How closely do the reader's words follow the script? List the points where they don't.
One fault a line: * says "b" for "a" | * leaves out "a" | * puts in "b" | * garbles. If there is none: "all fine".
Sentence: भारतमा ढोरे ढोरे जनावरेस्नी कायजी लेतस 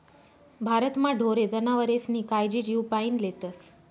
* leaves out "ढोरे"
* puts in "जीवपाईन"